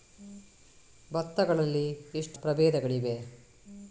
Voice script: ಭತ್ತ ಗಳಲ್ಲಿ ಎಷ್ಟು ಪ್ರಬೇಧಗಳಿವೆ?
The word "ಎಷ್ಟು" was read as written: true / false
true